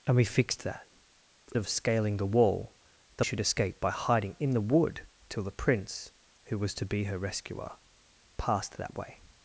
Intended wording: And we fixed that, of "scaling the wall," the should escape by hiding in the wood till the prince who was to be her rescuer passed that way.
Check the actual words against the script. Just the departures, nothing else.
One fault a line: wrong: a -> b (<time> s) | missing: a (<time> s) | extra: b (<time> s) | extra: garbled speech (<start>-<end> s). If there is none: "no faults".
no faults